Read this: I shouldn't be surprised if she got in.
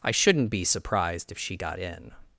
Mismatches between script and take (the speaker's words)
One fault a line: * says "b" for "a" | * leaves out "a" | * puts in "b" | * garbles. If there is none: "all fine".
all fine